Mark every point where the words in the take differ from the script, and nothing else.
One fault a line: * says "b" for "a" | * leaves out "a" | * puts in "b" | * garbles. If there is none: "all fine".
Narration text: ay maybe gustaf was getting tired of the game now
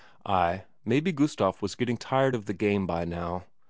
* puts in "by"